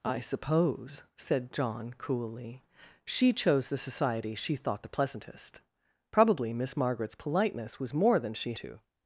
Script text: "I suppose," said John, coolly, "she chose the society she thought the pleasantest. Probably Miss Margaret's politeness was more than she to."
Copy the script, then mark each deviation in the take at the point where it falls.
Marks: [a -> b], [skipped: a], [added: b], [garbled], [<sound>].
"I suppose," said John, coolly, "she chose the society she thought the pleasantest. Probably Miss Margaret's politeness was more than she to."